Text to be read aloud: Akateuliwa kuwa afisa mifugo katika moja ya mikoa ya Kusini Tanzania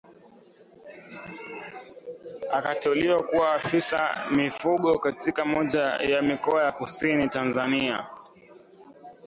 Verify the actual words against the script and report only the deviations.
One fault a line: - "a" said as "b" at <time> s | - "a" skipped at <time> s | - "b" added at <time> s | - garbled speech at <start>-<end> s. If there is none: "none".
none